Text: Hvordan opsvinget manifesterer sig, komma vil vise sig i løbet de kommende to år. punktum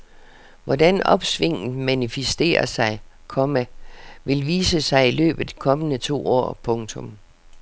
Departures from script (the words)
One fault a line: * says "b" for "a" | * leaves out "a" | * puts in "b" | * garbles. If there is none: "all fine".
all fine